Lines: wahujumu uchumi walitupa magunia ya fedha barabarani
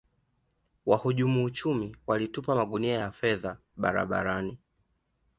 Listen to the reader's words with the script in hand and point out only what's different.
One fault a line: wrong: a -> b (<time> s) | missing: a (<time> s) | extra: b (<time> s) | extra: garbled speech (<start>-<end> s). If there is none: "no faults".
no faults